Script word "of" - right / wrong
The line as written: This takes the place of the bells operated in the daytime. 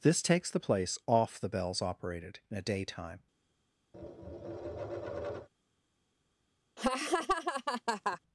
wrong